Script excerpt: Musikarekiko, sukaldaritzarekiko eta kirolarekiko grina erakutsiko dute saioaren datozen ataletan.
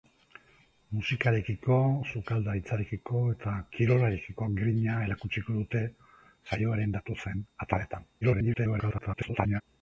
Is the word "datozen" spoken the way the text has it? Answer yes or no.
yes